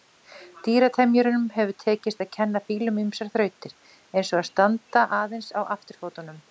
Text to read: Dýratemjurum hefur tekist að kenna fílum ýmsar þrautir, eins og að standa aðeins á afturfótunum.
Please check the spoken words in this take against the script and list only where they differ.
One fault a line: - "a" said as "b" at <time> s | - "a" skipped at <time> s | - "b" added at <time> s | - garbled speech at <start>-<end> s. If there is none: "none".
none